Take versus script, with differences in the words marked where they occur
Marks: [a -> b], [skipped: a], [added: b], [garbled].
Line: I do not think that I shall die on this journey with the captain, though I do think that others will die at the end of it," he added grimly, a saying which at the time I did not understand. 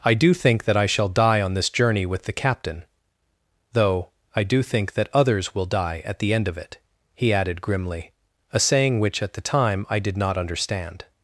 I do [skipped: not] think that I shall die on this journey with the captain, though I do think that others will die at the end of it," he added grimly, a saying which at the time I did not understand.